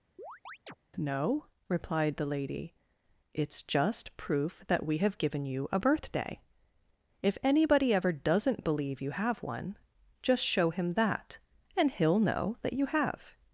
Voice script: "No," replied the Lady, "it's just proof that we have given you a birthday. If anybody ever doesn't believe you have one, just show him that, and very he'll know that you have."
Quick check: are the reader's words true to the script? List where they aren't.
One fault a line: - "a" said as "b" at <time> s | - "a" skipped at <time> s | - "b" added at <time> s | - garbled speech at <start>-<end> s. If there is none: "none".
- "very" skipped at 11.9 s